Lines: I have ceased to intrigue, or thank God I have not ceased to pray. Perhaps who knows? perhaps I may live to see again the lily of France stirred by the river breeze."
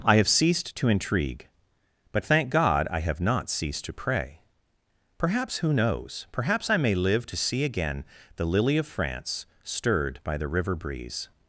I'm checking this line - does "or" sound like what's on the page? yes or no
no